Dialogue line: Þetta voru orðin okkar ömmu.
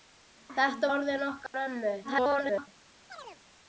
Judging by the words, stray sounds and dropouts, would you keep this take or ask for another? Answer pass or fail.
fail